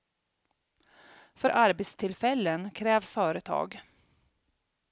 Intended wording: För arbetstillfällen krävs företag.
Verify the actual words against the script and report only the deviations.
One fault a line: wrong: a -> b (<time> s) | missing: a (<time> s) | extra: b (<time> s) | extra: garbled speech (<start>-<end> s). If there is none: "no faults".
no faults